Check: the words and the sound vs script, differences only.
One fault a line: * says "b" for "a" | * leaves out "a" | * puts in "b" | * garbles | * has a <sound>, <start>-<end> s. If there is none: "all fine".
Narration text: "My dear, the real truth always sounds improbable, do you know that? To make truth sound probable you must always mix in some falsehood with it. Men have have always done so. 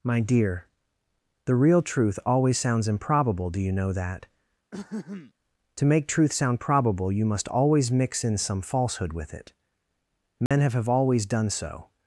* has a throat clearing, 4.7-5.3 s
* has a dropout, 10.5-10.5 s